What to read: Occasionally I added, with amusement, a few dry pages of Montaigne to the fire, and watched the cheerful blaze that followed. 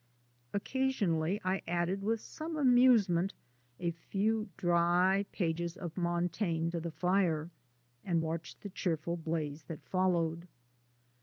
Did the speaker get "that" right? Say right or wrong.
right